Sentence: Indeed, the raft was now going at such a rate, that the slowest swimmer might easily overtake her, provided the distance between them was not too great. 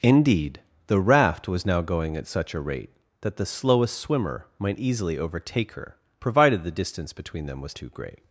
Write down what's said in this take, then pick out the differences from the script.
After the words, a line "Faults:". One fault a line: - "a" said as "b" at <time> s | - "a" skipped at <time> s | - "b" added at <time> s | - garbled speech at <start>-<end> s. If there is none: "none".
Indeed, the raft was now going at such a rate, that the slowest swimmer might easily overtake her, provided the distance between them was too great.
Faults:
- "not" skipped at 7.8 s